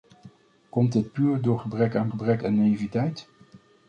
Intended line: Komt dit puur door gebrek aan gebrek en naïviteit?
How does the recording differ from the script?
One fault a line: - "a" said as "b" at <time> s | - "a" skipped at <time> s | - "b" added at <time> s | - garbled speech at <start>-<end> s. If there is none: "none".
none